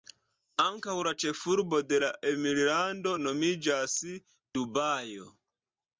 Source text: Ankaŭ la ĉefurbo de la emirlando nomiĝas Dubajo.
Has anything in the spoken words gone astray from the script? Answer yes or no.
no